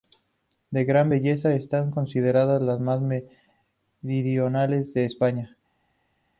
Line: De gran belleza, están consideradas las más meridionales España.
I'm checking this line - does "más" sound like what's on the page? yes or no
yes